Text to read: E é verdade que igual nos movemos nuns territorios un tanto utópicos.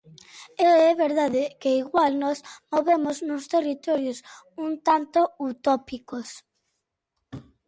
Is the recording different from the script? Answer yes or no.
no